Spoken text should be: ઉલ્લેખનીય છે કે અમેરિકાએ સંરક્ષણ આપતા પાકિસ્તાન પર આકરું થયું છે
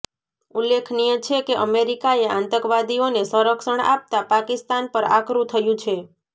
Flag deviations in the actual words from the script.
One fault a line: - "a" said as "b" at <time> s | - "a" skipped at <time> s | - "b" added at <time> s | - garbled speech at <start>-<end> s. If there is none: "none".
- "આતંકવાદીઓને" added at 2.3 s